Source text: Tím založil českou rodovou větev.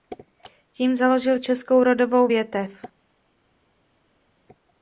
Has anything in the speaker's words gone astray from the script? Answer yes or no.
no